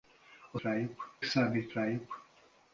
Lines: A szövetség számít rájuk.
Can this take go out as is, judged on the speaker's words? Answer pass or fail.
fail